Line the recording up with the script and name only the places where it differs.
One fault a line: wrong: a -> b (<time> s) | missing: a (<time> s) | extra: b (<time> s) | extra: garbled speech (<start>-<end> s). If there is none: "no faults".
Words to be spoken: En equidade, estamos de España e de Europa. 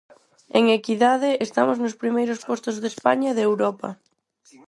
extra: nos primeiros postos (1.8 s)